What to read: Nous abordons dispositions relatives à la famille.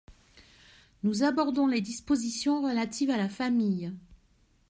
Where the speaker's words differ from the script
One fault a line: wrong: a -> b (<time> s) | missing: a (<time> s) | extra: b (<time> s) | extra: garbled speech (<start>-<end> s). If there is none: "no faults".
extra: les (1.7 s)